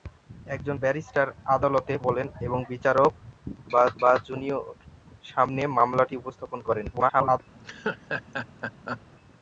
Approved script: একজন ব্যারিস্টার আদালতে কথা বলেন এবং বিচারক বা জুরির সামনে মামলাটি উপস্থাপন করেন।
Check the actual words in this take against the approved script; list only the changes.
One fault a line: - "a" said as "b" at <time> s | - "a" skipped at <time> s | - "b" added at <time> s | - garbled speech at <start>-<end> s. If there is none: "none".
- "কথা" skipped at 1.9 s
- "বা" added at 4.0 s
- garbled speech at 6.9-7.4 s